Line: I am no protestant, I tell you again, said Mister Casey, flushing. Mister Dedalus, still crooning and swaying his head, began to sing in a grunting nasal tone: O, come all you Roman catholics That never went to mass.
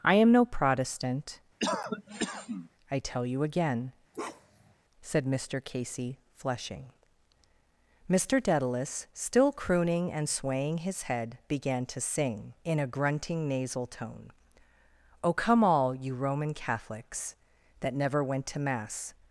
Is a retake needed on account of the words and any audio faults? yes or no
yes